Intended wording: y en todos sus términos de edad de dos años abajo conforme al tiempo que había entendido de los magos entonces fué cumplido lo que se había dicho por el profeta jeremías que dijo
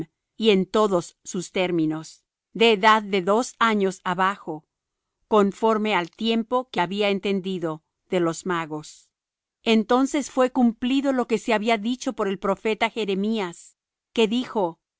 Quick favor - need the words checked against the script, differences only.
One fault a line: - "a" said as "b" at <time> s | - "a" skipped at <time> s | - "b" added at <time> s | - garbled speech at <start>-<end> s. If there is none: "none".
none